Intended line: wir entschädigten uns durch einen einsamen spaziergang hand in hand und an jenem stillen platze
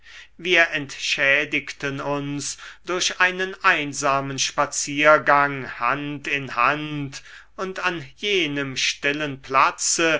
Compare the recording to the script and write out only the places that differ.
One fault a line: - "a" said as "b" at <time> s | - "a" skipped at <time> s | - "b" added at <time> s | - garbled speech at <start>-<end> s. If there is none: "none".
none